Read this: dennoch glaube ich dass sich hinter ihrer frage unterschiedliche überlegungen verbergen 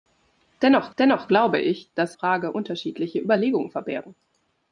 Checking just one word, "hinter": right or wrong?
wrong